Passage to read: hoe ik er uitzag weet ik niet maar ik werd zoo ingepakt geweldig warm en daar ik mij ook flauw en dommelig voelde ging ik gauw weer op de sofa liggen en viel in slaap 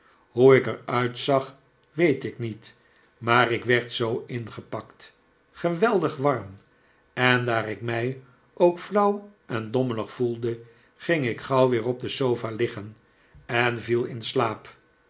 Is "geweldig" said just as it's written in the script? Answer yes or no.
yes